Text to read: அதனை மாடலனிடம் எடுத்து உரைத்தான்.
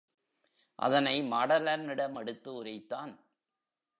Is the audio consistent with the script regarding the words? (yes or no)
yes